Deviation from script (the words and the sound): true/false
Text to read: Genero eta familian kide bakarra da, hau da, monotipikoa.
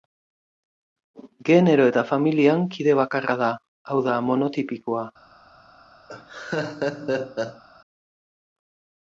true